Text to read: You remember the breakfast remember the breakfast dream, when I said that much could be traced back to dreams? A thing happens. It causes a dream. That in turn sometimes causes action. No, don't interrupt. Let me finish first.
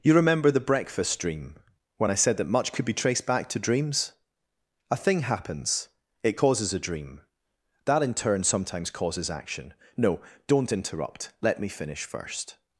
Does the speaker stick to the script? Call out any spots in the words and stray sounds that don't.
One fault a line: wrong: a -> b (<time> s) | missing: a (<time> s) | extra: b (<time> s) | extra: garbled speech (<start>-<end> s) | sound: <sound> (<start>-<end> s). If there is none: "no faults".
missing: remember the breakfast (1.2 s)